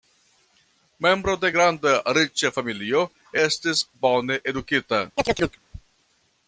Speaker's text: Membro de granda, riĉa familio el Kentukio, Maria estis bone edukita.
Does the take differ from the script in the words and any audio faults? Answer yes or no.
yes